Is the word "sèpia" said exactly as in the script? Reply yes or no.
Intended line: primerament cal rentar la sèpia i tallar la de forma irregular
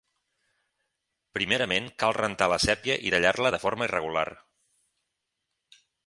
yes